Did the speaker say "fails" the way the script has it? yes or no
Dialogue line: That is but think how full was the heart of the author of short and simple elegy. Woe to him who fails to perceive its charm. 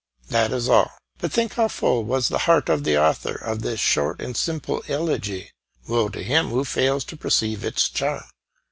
yes